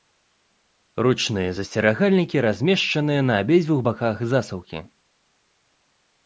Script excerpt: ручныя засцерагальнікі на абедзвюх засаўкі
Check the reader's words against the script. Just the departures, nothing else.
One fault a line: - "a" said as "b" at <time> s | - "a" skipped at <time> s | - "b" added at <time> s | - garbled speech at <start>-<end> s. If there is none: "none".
- "размешчаныя" added at 2.5 s
- "баках" added at 3.9 s